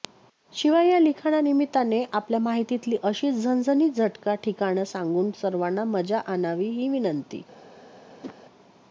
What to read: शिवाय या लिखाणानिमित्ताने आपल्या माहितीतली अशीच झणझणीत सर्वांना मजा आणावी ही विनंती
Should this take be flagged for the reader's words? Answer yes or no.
yes